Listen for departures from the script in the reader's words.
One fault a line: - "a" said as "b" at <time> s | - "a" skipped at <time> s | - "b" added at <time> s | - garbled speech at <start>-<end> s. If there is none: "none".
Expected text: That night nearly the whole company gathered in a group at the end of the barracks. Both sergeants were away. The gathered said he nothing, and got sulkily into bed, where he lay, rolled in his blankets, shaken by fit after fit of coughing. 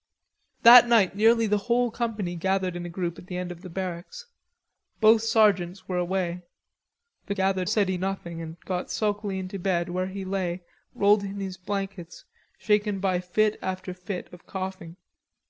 none